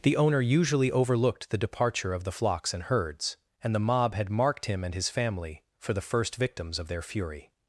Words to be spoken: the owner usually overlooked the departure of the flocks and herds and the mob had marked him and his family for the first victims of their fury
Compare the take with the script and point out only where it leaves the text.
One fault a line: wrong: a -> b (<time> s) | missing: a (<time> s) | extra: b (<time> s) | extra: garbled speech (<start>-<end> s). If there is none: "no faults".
no faults